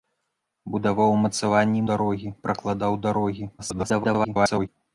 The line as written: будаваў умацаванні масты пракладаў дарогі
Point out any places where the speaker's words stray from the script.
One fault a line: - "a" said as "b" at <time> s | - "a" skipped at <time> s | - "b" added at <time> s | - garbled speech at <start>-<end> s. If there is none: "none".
- "масты" said as "дарогі" at 1.9 s
- garbled speech at 3.6-4.7 s